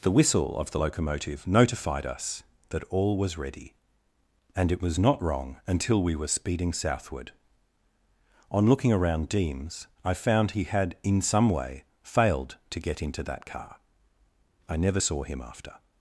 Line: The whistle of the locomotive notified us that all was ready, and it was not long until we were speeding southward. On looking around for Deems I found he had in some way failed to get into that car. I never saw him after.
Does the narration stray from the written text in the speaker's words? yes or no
yes